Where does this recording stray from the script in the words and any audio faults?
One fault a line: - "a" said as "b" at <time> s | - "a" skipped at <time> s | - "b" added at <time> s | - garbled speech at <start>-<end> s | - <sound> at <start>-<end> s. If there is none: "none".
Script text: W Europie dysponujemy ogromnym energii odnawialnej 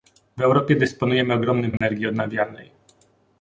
- dropout at 1.8-1.8 s